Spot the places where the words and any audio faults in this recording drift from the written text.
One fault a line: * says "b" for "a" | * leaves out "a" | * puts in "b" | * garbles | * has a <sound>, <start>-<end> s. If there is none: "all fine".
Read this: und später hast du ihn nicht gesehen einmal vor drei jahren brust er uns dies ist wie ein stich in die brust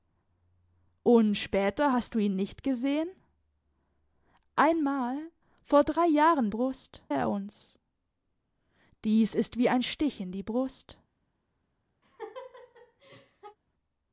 * has a laugh, 12.0-13.6 s